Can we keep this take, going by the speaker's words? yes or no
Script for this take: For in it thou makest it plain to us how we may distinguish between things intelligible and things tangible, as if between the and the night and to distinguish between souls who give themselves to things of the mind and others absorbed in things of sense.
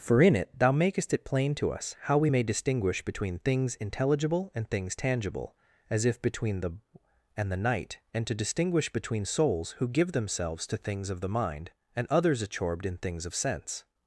yes